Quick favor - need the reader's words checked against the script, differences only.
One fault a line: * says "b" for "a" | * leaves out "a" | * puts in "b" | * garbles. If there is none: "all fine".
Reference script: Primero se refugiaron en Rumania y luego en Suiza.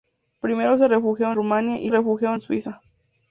* leaves out "en"
* says "refugiaron" for "luego"